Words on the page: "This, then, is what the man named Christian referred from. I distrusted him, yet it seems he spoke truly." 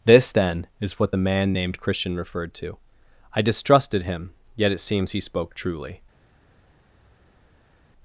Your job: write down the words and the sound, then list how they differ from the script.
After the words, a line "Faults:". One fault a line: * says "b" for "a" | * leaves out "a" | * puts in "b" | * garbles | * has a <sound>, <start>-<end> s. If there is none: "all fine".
"This, then, is what the man named Christian referred to. I distrusted him, yet it seems he spoke truly."
Faults:
* says "to" for "from"